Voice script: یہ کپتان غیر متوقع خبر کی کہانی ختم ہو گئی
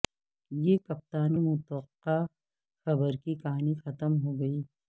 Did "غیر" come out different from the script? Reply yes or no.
yes